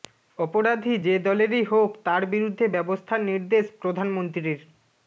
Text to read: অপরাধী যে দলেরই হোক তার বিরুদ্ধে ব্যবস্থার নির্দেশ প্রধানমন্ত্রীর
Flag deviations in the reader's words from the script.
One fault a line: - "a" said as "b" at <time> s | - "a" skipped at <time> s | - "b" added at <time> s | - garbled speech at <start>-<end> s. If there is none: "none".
none